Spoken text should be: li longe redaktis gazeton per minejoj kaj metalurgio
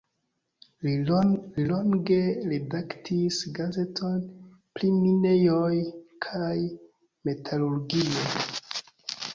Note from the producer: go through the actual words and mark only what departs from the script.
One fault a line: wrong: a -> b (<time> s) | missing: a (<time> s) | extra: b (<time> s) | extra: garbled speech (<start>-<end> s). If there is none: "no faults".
wrong: per -> pri (4.8 s)